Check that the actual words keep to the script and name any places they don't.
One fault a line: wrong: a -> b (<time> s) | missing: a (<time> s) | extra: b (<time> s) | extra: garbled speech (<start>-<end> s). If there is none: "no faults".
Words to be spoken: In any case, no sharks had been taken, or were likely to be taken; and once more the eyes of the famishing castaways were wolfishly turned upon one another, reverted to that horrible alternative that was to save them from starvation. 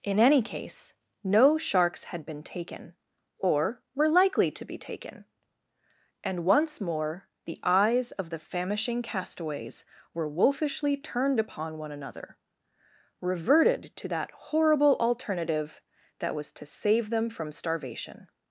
no faults